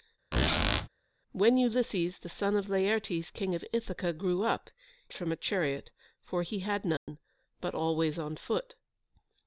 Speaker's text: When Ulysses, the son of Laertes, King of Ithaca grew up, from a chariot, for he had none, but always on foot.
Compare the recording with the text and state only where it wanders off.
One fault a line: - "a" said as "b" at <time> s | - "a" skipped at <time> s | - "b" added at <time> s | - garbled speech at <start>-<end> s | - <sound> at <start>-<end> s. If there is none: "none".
- squeak at 0.3-0.9 s
- dropout at 7.0-7.1 s